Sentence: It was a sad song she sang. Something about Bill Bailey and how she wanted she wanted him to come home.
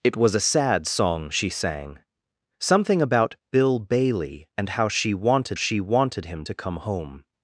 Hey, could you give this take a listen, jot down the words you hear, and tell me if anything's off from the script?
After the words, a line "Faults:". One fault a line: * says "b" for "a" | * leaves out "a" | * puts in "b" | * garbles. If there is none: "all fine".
It was a sad song she sang. Something about Bill Bailey and how she wanted she wanted him to come home.
Faults:
all fine